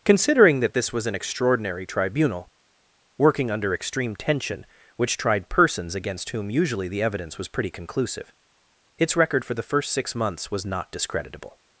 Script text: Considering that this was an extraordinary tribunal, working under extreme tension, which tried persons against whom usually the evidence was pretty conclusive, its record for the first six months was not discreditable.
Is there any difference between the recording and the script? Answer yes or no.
no